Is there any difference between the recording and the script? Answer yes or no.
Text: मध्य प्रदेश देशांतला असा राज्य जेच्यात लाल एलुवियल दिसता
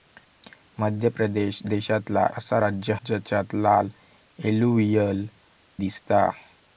no